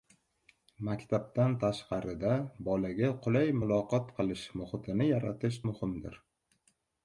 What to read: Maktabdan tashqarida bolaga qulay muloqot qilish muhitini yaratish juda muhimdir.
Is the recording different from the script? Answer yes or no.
yes